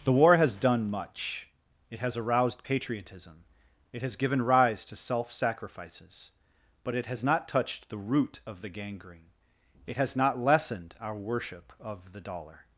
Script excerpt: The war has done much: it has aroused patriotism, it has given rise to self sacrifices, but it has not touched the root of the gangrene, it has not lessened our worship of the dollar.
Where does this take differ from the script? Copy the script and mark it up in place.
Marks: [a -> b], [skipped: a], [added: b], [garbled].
The war has done much: it has aroused patriotism, it has given rise to self sacrifices, but it has not touched the root of the gangrene, it has not lessened our worship of the dollar.